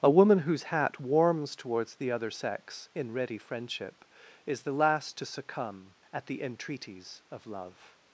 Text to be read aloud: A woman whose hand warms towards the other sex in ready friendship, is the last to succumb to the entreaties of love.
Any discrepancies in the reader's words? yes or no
yes